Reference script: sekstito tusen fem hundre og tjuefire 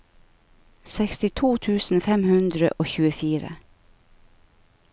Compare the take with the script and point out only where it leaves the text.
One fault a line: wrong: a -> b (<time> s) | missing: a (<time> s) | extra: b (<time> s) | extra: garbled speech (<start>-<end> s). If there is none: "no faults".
no faults